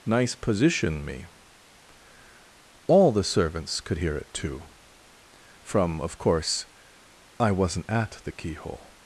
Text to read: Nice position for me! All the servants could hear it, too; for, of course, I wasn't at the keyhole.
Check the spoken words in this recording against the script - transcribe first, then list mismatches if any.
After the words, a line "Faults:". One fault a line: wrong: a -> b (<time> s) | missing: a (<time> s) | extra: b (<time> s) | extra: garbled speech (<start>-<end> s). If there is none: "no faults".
Nice position me! All the servants could hear it, too; from, of course, I wasn't at the keyhole.
Faults:
missing: for (1.1 s)
wrong: for -> from (5.6 s)